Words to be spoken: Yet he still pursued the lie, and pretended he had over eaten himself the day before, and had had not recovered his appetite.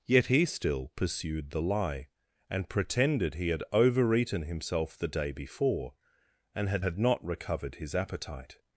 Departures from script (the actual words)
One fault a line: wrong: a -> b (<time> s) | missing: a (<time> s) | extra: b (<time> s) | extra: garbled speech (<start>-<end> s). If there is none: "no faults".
no faults